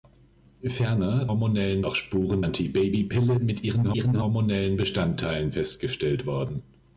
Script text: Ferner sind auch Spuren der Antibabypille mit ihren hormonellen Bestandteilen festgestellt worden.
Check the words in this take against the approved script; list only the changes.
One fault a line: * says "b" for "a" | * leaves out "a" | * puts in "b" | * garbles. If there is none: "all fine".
* says "hormonellen" for "sind"
* leaves out "der"
* puts in "ihren"